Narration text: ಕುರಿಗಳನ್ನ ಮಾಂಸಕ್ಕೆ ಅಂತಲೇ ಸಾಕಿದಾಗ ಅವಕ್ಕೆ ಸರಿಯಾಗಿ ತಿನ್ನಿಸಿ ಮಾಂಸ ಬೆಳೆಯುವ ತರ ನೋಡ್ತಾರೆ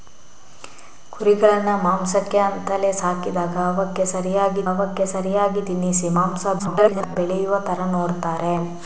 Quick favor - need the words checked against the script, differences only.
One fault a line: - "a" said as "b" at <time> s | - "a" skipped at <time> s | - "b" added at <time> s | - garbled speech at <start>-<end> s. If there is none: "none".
- "ಅವಕ್ಕೆ ಸರಿಯಾಗಿ" added at 4.7 s
- garbled speech at 6.6-7.2 s